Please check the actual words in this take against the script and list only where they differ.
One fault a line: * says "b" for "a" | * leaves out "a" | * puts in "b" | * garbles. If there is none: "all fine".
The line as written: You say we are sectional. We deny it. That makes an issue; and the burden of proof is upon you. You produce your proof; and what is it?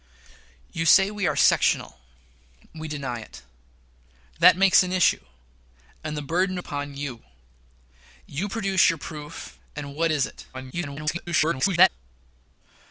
* leaves out "of proof is"
* garbles